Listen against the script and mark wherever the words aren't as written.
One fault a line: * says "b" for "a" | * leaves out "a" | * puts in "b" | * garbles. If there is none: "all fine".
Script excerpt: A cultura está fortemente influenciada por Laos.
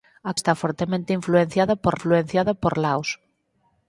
* leaves out "cultura"
* puts in "influenciada por"